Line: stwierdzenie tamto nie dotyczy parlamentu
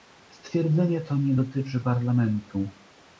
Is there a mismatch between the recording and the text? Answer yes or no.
yes